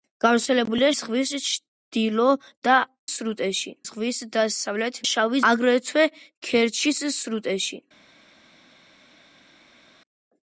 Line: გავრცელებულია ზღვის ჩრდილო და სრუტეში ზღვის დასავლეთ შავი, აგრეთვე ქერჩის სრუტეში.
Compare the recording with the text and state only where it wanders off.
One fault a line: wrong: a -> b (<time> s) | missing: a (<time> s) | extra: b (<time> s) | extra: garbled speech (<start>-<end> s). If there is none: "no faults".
no faults